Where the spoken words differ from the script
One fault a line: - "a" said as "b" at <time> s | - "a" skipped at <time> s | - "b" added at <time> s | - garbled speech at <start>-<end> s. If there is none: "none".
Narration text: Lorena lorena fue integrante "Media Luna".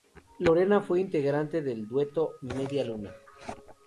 - "lorena" skipped at 0.8 s
- "del dueto" added at 1.6 s